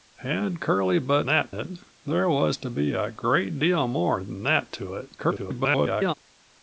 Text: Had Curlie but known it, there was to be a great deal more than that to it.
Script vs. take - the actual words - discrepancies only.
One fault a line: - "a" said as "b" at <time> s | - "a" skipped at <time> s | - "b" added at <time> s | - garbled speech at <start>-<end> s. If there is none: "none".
- "known" said as "that" at 1.3 s
- garbled speech at 5.2-6.1 s